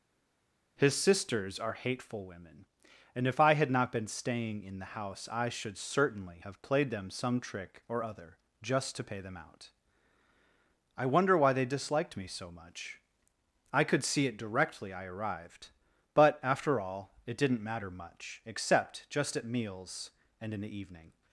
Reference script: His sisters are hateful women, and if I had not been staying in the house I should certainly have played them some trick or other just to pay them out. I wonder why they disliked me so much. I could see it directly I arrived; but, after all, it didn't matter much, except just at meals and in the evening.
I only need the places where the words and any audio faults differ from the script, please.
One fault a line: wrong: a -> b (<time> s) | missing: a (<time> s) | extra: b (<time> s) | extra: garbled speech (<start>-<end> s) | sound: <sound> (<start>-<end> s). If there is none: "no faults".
no faults